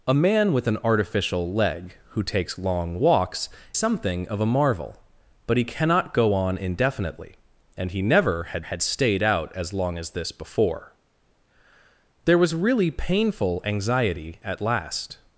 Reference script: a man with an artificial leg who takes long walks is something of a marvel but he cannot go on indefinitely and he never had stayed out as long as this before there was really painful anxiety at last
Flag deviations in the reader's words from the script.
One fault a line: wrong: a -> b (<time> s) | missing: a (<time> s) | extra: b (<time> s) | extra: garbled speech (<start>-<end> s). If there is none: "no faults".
missing: is (3.5 s)
extra: had (8.6 s)